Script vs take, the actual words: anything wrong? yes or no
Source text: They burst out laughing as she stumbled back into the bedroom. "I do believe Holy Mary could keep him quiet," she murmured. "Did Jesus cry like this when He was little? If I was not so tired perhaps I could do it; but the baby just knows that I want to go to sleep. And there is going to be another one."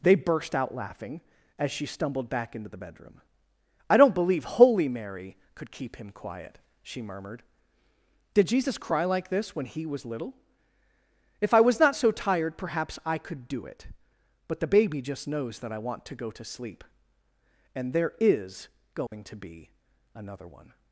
yes